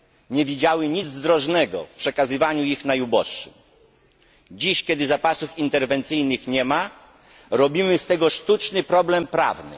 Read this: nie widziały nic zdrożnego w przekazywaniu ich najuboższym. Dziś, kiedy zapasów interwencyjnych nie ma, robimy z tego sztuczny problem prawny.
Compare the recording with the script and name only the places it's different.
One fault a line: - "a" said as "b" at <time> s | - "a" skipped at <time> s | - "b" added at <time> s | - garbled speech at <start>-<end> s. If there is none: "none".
none